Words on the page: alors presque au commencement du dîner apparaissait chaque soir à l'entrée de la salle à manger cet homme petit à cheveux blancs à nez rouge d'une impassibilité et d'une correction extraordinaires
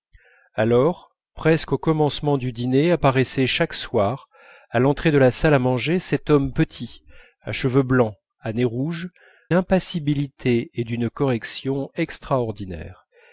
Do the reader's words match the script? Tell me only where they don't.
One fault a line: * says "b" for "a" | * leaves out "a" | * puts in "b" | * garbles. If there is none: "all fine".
* leaves out "d'une"